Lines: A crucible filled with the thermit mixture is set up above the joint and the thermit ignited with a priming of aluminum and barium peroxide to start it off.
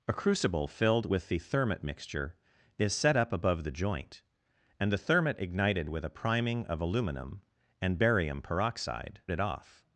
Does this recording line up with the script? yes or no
no